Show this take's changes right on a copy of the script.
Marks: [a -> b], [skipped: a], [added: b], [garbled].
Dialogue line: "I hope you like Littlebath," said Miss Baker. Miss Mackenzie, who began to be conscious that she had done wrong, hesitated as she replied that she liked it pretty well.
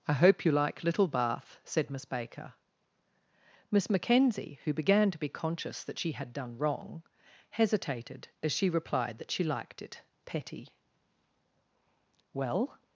"I hope you like Littlebath," said Miss Baker. Miss Mackenzie, who began to be conscious that she had done wrong, hesitated as she replied that she liked it [pretty -> petty] well.